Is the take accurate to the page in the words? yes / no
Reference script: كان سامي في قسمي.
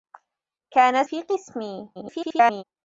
no